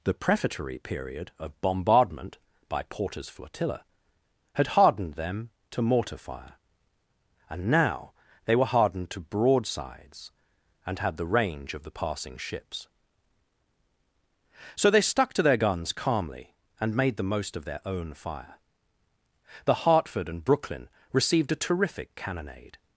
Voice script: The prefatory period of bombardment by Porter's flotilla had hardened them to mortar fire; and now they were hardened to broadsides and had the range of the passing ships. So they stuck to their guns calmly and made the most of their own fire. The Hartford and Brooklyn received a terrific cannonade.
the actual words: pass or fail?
pass